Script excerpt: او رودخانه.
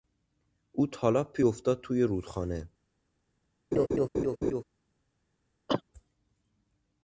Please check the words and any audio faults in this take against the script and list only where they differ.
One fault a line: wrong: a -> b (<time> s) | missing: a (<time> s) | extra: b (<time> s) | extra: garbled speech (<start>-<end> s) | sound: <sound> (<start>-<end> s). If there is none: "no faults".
extra: تالاپی افتاد توی (0.9 s)
sound: laugh (3.7-4.6 s)
sound: cough (5.7-5.8 s)